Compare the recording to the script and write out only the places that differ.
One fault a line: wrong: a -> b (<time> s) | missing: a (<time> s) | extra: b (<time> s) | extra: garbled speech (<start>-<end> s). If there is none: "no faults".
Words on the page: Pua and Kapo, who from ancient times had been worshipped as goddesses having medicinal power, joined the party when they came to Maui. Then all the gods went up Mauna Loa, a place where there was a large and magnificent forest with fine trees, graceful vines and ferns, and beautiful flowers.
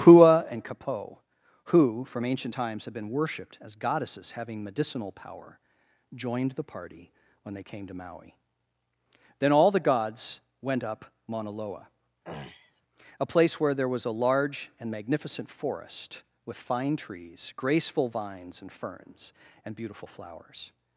no faults